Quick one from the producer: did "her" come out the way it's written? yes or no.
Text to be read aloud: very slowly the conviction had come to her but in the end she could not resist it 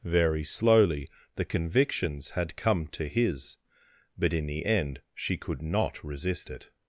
no